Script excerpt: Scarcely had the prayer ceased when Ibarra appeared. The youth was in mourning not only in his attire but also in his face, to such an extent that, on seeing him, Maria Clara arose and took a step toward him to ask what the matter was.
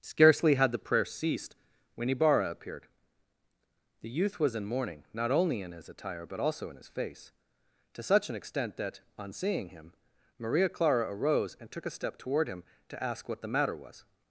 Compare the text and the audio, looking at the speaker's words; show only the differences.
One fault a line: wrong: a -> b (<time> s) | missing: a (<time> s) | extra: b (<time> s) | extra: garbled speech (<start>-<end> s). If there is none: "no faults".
no faults